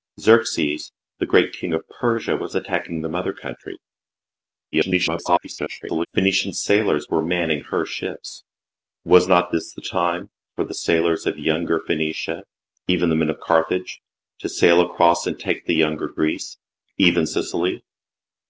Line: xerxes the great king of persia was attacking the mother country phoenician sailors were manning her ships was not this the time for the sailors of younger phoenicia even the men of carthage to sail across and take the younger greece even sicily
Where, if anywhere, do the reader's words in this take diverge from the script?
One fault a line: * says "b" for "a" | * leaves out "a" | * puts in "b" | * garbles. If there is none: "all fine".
* garbles